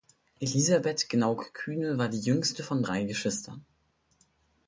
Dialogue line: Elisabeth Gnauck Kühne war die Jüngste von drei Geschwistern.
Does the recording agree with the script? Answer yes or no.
yes